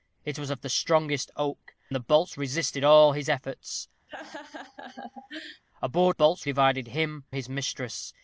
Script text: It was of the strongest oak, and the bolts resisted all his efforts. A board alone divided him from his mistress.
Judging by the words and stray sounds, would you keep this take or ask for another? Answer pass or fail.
fail